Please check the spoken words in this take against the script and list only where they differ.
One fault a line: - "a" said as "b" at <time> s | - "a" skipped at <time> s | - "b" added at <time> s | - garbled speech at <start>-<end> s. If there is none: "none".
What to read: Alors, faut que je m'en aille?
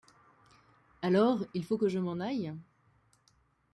- "il" added at 1.5 s